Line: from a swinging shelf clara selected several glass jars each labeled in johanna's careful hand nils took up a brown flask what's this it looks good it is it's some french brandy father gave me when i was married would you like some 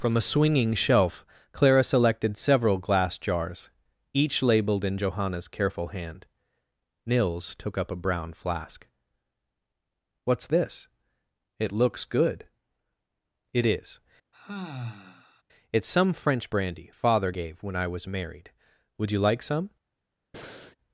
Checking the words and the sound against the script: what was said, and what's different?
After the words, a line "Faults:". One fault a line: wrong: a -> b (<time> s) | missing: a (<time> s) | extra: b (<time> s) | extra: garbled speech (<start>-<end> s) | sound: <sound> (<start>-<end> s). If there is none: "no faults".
from a swinging shelf clara selected several glass jars each labeled in johanna's careful hand nils took up a brown flask what's this it looks good it is it's some french brandy father gave when i was married would you like some
Faults:
sound: sigh (14.3-15.4 s)
missing: me (17.6 s)
sound: breath (20.3-20.8 s)